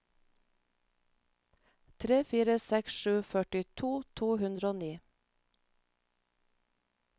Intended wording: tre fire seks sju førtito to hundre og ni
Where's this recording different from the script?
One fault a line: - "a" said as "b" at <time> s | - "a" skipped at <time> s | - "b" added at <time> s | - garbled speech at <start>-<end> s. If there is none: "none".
none